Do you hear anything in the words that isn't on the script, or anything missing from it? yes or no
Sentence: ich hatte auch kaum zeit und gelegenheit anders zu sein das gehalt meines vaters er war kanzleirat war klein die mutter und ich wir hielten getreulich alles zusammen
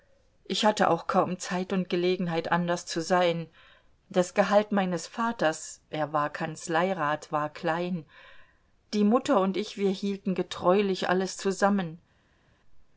no